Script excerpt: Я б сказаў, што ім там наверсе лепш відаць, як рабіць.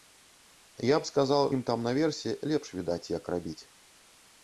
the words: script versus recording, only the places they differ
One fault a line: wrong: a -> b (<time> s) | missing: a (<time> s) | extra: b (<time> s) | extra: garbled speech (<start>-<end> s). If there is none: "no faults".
missing: што (1.4 s)